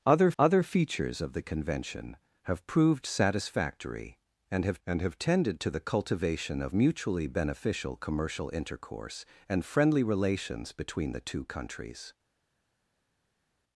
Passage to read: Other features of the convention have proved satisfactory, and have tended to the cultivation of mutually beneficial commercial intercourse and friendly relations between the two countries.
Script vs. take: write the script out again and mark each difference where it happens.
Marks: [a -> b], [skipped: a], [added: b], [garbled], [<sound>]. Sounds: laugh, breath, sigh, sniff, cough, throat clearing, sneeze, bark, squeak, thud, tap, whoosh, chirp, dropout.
Other [added: other] features of the convention have proved satisfactory, and have [added: and have] tended to the cultivation of mutually beneficial commercial intercourse and friendly relations between the two countries.